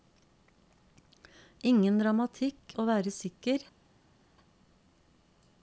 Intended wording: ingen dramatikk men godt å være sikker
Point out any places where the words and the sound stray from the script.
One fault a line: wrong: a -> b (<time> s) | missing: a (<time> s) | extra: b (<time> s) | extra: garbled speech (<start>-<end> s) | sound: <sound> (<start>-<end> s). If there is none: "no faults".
missing: men godt (2.8 s)